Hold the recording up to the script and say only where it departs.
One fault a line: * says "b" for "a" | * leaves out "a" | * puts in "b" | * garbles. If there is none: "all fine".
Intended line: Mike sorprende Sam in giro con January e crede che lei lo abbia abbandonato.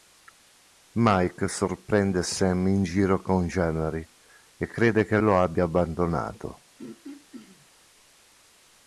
* leaves out "lei"